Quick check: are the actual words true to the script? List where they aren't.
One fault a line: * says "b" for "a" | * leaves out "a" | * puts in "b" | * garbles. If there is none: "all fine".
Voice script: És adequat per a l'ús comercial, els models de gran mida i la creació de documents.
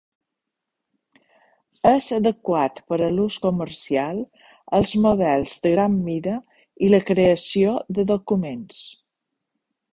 all fine